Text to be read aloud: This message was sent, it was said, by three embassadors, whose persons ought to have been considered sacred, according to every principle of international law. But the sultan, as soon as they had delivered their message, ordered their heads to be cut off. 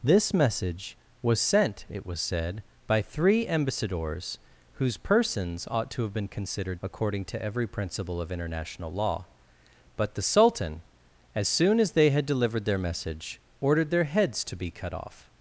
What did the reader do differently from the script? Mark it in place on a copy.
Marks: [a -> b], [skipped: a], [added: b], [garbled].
This message was sent, it was said, by three embassadors, whose persons ought to have been considered [skipped: sacred,] according to every principle of international law. But the sultan, as soon as they had delivered their message, ordered their heads to be cut off.